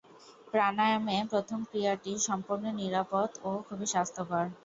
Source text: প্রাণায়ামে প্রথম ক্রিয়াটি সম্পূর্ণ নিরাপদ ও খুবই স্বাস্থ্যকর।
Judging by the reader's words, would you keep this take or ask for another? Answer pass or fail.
pass